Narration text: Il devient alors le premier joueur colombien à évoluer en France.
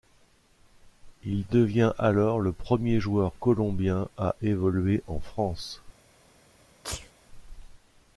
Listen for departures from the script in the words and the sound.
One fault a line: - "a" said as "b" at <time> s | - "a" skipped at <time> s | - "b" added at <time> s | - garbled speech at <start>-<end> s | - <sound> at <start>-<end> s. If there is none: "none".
- sneeze at 6.8-7.1 s